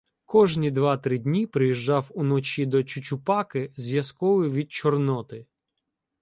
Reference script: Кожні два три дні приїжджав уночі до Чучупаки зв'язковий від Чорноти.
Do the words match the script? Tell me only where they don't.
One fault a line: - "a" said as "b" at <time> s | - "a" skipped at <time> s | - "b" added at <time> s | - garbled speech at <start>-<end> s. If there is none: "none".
none